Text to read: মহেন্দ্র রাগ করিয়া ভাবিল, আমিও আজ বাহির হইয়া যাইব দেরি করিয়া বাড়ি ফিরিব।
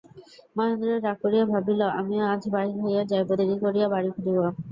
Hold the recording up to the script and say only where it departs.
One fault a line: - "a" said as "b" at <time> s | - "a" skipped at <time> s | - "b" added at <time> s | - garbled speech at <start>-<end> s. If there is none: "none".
none